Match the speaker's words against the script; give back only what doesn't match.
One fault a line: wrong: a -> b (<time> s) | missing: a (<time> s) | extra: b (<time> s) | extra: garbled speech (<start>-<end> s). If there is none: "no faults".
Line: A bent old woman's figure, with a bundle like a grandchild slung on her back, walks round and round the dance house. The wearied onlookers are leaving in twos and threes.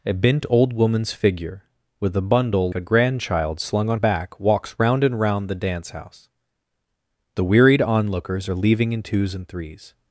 missing: like (2.7 s)
missing: her (4.0 s)